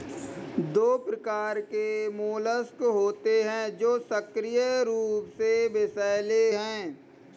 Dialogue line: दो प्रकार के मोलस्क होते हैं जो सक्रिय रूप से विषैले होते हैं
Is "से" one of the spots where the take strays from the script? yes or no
no